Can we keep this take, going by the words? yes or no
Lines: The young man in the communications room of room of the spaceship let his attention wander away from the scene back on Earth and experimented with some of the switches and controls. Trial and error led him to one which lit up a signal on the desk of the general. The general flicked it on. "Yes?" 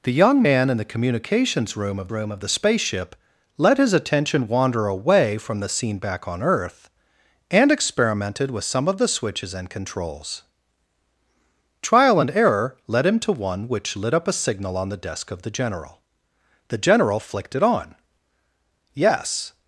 yes